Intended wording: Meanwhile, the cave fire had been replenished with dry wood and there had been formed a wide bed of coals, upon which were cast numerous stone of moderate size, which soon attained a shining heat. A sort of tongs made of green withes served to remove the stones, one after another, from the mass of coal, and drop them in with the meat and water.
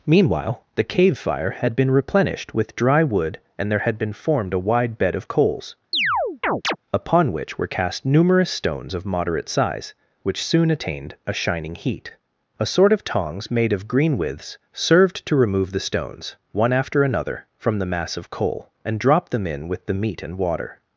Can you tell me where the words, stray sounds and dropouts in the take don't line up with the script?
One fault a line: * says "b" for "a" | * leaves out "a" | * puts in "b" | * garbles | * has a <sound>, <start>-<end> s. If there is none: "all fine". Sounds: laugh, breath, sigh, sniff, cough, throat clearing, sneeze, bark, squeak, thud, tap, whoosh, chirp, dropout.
* has a chirp, 5.9-6.8 s
* says "stones" for "stone"